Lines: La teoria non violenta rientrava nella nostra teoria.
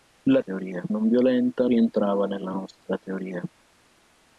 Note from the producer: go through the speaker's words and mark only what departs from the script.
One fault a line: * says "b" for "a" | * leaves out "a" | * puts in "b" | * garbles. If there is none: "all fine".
all fine